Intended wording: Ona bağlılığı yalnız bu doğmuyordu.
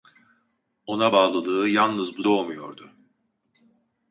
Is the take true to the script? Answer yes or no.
yes